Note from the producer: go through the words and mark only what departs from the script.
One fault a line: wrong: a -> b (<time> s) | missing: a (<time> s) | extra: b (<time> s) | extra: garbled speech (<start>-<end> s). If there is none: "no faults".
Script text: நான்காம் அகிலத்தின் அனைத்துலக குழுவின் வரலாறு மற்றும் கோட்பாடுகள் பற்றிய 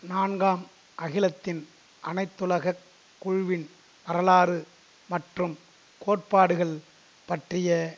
no faults